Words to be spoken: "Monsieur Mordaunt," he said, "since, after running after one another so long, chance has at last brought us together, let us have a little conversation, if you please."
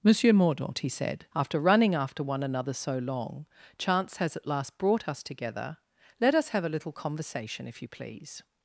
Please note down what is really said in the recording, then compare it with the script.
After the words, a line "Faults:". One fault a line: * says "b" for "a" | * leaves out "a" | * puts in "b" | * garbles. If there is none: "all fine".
"Monsieur Mordaunt," he said, "after running after one another so long, chance has at last brought us together, let us have a little conversation, if you please."
Faults:
* leaves out "since"